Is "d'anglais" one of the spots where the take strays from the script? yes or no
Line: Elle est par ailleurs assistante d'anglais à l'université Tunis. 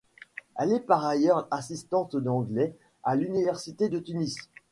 no